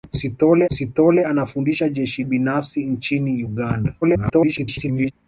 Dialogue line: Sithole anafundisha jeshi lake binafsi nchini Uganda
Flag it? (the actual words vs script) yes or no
yes